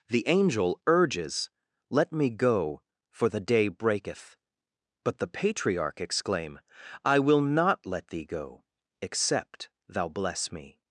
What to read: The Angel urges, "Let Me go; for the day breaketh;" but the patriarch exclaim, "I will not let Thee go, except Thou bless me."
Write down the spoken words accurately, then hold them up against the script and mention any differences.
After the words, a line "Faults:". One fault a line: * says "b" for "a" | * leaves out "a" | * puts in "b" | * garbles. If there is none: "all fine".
The Angel urges, "Let Me go; for the day breaketh;" but the patriarch exclaim, "I will not let Thee go, except Thou bless me."
Faults:
all fine